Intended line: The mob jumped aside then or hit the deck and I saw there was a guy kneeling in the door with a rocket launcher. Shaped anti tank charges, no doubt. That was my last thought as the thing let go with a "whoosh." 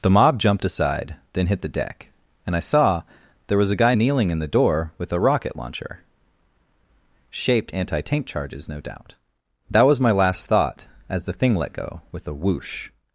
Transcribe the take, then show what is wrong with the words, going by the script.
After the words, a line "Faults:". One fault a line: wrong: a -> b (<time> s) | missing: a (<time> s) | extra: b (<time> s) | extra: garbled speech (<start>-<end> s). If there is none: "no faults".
The mob jumped aside then hit the deck and I saw there was a guy kneeling in the door with a rocket launcher. Shaped anti tank charges, no doubt. That was my last thought as the thing let go with a "whoosh."
Faults:
missing: or (1.5 s)